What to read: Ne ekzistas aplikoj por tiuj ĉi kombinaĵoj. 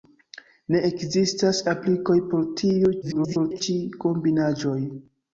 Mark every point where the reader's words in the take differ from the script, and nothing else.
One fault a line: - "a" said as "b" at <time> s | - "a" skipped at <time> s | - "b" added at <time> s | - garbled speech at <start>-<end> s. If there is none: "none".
- garbled speech at 3.0-3.6 s